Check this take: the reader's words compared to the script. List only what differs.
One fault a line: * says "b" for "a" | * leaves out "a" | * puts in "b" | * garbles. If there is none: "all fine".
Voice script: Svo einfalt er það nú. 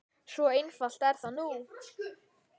all fine